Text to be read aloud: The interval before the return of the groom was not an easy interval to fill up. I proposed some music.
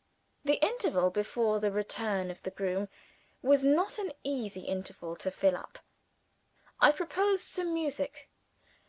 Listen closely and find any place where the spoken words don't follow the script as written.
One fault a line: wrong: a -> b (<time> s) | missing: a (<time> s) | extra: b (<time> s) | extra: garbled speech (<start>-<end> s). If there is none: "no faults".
no faults